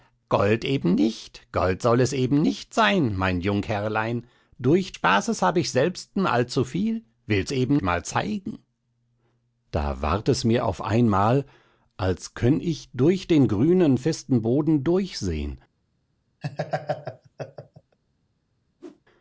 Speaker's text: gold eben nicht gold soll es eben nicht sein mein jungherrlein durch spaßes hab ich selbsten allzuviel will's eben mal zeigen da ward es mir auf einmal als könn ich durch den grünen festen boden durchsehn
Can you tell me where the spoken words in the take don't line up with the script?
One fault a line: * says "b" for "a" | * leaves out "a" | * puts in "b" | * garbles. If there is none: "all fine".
all fine